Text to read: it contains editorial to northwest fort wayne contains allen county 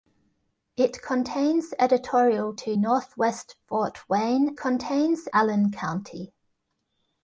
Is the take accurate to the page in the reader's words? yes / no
yes